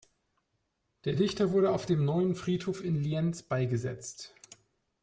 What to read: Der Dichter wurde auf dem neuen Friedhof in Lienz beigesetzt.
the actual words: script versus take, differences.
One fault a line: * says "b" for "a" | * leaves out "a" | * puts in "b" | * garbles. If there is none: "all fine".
all fine